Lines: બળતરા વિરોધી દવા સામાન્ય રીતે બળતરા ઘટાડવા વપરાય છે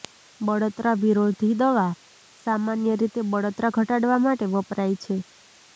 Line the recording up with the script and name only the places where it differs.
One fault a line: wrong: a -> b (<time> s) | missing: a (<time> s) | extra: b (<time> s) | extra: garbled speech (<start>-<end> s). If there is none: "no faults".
extra: માટે (4.2 s)